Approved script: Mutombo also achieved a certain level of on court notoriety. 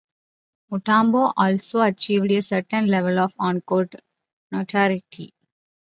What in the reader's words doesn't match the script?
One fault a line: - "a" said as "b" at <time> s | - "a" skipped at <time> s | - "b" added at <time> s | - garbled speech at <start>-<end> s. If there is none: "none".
none